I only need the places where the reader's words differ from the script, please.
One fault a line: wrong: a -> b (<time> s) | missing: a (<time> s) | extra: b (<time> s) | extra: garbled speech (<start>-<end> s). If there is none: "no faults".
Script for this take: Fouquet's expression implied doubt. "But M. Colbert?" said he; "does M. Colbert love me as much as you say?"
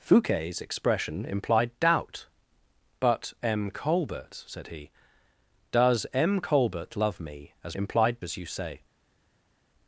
wrong: much -> implied (7.7 s)